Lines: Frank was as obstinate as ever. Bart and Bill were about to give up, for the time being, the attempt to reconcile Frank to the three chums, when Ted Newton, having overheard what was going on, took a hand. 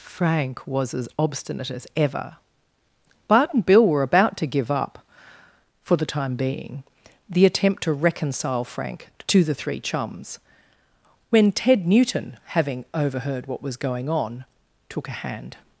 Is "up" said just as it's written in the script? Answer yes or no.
yes